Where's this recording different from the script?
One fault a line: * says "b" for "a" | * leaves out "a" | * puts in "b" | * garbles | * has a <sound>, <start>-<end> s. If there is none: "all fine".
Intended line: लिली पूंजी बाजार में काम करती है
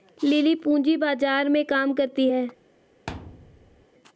* has a thud, 3.1-3.9 s